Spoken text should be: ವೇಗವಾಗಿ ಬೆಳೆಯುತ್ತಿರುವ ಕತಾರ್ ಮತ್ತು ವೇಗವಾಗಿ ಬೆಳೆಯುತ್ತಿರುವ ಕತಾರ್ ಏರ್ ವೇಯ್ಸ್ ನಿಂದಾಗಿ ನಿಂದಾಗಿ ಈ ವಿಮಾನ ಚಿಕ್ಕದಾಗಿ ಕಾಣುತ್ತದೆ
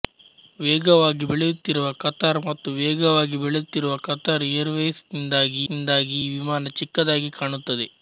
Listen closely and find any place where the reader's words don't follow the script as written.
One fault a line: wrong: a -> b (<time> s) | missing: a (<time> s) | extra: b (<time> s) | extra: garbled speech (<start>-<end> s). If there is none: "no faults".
no faults